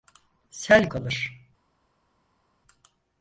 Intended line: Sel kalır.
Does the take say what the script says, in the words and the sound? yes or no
yes